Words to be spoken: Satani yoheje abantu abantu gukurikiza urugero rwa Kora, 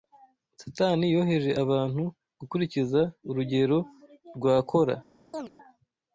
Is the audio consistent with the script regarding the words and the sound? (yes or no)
no